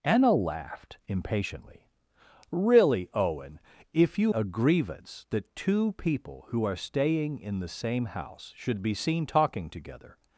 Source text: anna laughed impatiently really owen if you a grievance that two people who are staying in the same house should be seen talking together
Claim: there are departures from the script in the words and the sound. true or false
false